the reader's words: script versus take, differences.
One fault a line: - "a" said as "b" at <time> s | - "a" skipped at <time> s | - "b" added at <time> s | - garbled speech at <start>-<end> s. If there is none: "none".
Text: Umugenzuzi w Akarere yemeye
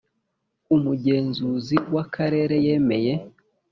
none